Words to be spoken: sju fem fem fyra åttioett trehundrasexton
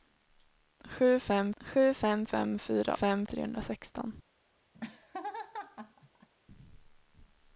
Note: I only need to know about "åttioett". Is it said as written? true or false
false